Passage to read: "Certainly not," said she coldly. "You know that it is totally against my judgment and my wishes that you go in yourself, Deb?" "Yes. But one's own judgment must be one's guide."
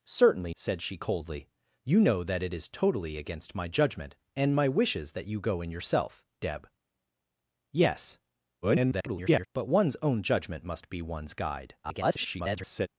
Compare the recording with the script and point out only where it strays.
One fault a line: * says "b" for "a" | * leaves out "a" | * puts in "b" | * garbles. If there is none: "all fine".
* leaves out "not"
* garbles
* garbles